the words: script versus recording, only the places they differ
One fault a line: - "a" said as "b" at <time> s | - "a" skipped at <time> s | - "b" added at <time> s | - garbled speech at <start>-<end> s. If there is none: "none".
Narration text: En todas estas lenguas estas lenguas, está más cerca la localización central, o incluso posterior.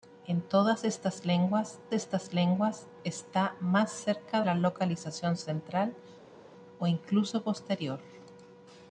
none